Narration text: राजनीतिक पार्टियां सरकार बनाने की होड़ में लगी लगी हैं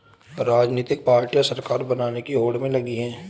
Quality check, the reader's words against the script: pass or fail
fail